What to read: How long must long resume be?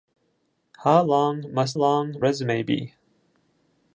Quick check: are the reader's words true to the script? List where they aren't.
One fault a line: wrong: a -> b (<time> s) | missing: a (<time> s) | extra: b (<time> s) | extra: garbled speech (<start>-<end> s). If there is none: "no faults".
no faults